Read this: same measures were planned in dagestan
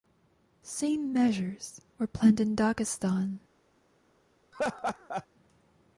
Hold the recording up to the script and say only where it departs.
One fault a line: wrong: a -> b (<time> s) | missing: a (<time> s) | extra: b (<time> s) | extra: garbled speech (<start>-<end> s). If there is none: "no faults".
no faults